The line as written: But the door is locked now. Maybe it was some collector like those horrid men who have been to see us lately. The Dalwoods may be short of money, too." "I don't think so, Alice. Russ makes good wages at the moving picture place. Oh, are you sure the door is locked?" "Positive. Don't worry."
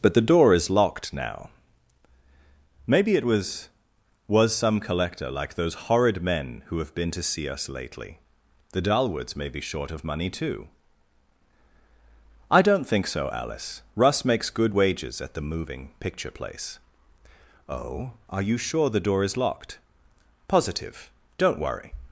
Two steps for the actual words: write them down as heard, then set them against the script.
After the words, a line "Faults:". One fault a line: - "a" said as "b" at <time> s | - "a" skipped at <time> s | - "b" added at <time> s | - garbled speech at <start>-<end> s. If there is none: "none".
But the door is locked now. Maybe it was was some collector like those horrid men who have been to see us lately. The Dalwoods may be short of money, too." "I don't think so, Alice. Russ makes good wages at the moving picture place. Oh, are you sure the door is locked?" "Positive. Don't worry."
Faults:
- "was" added at 4.3 s